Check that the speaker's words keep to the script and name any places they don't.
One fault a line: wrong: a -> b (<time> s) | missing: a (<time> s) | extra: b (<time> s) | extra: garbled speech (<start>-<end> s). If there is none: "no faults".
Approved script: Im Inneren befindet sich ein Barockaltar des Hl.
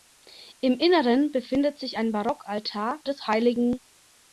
no faults